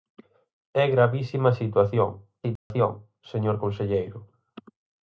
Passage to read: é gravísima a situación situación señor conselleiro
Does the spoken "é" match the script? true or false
true